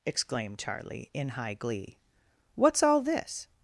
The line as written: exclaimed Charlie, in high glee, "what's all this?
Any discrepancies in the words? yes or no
no